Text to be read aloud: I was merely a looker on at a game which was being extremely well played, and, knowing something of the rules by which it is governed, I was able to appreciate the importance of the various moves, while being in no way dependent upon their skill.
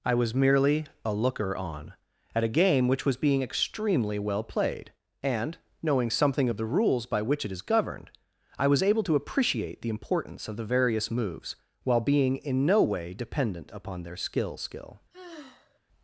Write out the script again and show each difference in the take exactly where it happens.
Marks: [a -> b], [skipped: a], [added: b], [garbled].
I was merely a looker on at a game which was being extremely well played, and, knowing something of the rules by which it is governed, I was able to appreciate the importance of the various moves, while being in no way dependent upon their skill. [added: skill]